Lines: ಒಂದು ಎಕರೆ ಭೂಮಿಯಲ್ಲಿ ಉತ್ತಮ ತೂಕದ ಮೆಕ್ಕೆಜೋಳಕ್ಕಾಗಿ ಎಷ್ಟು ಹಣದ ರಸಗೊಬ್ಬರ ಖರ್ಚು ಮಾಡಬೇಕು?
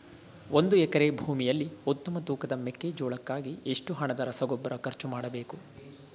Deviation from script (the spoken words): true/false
false